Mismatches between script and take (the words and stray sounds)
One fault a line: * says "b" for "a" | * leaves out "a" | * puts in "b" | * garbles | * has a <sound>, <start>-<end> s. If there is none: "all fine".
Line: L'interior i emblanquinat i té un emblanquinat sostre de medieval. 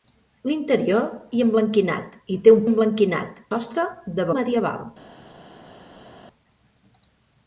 all fine